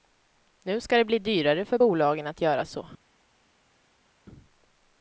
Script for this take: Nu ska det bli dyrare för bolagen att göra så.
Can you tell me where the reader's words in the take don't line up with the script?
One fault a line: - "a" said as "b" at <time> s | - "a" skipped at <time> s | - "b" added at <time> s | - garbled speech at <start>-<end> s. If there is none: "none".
none